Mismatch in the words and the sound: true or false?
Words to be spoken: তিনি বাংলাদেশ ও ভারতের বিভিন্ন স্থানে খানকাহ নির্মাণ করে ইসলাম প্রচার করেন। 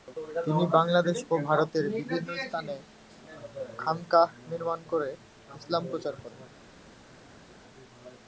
false